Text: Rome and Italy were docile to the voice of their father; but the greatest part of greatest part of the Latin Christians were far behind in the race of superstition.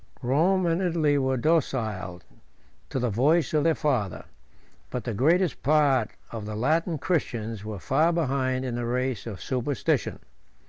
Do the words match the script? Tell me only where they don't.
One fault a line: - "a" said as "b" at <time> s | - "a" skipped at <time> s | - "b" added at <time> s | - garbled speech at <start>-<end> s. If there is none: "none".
- "greatest part of" skipped at 6.4 s